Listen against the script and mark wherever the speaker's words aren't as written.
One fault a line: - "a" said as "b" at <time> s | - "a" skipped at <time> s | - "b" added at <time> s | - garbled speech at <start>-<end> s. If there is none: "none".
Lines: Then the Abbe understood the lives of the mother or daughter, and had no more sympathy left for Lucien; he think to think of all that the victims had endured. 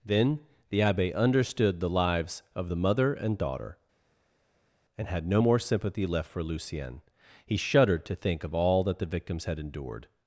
- "or" said as "and" at 3.1 s
- "think" said as "shuddered" at 7.6 s